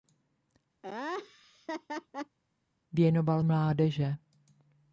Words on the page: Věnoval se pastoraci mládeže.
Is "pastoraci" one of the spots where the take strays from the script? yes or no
yes